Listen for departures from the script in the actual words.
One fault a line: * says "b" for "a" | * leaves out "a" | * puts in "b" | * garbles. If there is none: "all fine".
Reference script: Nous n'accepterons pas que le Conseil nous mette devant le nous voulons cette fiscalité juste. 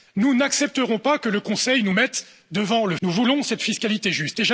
all fine